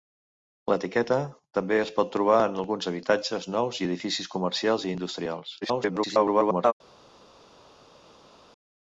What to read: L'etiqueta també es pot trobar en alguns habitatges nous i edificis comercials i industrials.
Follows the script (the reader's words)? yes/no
no